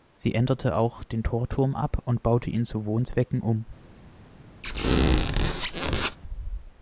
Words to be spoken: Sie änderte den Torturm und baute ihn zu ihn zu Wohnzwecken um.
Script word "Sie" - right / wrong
right